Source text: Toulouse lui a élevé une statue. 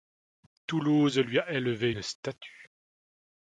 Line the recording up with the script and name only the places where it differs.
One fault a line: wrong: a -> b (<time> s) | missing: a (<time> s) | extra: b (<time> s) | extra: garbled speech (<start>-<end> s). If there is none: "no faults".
no faults